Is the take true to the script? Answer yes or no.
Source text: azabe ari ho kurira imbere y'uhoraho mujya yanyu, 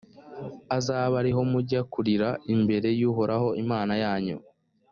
no